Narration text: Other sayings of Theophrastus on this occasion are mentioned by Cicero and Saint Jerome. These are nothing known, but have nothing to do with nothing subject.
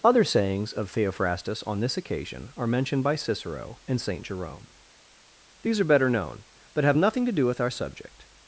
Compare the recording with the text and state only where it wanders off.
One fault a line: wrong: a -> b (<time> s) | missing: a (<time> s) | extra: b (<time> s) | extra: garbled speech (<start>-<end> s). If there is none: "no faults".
wrong: nothing -> better (5.8 s)
wrong: nothing -> our (7.6 s)